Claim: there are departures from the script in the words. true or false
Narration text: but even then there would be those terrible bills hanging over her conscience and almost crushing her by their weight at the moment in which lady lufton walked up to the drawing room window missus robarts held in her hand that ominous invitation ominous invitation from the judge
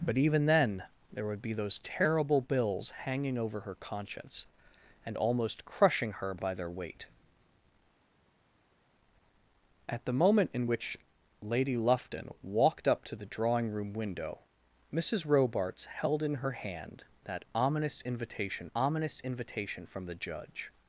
false